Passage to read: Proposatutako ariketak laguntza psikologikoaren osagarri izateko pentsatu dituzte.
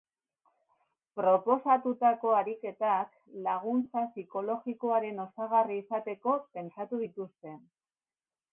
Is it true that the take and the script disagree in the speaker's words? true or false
false